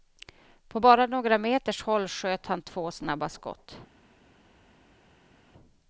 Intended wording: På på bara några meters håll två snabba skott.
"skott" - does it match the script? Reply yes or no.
yes